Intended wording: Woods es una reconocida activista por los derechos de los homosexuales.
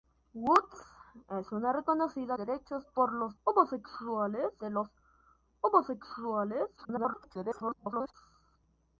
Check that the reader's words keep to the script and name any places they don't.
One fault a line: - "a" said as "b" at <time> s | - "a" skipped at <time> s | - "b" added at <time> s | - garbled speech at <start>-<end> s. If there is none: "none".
- "activista" said as "derechos" at 2.4 s
- "derechos" said as "homosexuales" at 3.4 s
- garbled speech at 6.8-8.1 s